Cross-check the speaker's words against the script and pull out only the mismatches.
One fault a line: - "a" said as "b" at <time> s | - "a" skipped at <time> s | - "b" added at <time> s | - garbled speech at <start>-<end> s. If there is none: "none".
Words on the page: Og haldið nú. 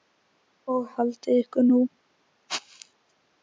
- "ykkur" added at 1.4 s